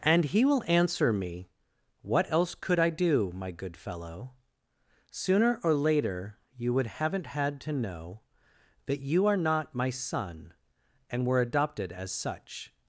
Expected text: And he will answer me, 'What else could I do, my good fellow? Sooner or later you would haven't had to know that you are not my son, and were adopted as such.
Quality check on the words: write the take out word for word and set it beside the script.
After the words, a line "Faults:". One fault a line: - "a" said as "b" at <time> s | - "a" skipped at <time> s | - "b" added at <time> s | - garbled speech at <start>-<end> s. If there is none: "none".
And he will answer me, 'What else could I do, my good fellow? Sooner or later you would haven't had to know that you are not my son, and were adopted as such.
Faults:
none